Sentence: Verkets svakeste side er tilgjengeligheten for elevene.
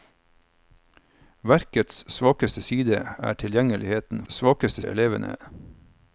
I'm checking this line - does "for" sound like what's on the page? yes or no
no